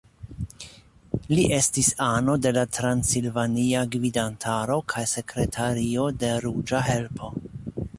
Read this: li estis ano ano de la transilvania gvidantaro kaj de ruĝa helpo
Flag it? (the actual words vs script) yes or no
yes